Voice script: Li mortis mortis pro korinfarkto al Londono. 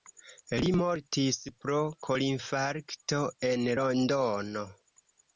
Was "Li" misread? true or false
false